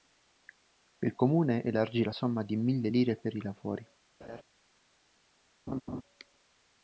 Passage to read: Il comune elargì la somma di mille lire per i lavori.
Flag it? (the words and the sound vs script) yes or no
yes